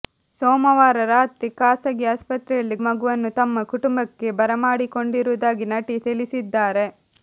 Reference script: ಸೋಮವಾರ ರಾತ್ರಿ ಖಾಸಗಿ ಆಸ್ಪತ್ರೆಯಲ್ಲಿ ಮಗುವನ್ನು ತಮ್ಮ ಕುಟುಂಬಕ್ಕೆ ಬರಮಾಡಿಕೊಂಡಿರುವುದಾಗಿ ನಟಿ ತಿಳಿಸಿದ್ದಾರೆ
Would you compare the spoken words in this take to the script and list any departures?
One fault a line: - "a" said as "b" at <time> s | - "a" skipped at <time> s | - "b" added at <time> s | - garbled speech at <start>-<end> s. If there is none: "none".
none